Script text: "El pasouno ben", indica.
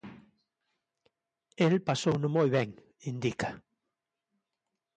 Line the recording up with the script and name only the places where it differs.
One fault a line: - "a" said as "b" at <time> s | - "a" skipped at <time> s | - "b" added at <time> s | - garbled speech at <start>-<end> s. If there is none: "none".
- "moi" added at 2.4 s